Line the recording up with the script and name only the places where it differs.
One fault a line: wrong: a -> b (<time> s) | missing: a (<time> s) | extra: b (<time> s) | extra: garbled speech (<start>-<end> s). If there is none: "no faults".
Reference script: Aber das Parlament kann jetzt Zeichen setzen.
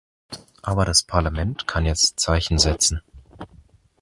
no faults